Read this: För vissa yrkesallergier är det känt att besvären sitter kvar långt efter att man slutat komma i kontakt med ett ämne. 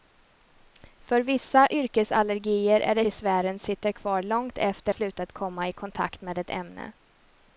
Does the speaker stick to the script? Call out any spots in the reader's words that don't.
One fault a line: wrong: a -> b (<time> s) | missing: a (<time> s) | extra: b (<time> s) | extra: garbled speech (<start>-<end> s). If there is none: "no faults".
missing: känt att (3.0 s)
missing: att man (4.9 s)